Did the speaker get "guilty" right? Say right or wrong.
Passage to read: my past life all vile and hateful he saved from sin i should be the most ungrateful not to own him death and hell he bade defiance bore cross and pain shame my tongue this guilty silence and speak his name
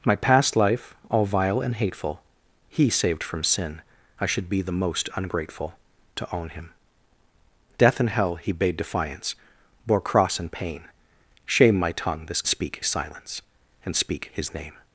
wrong